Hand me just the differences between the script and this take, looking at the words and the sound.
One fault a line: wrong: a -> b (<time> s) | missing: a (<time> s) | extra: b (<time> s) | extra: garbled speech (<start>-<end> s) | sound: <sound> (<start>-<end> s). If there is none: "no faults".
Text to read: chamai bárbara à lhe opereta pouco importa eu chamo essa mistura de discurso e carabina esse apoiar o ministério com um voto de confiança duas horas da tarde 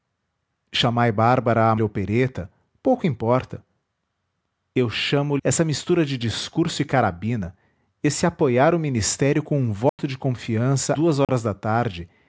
sound: dropout (9.9-10.0 s)
sound: dropout (11.2-11.3 s)